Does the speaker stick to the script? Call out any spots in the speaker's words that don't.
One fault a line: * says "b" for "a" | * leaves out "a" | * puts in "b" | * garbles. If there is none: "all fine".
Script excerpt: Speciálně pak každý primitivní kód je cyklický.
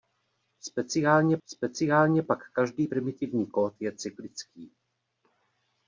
* puts in "speciálně"